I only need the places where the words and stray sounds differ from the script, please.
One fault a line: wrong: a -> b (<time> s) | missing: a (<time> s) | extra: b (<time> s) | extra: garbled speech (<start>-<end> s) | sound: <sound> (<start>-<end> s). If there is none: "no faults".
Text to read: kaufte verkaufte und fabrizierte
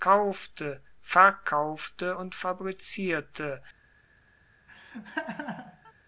sound: laugh (4.7-5.9 s)